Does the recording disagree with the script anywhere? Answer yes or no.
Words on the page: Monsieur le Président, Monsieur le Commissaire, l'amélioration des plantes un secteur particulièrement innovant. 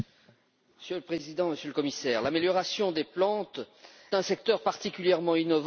no